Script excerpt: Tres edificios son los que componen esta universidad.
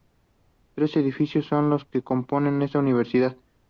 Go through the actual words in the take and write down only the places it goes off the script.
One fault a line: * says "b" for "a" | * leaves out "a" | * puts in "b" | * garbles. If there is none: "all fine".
all fine